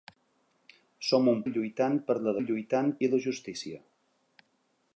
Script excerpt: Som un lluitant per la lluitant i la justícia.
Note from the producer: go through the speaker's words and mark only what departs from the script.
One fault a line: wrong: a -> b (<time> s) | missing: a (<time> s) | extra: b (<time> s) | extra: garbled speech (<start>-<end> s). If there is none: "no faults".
no faults